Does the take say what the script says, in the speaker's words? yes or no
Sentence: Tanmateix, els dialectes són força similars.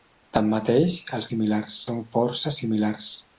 no